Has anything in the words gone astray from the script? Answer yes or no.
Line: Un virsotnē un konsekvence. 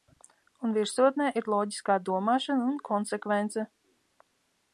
yes